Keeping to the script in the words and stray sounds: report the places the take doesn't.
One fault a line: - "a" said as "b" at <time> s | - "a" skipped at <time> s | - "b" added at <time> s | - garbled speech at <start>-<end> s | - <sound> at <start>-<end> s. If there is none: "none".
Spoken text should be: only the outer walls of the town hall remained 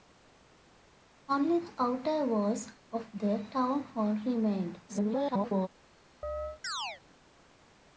- garbled speech at 4.9-5.7 s
- chirp at 6.2-7.0 s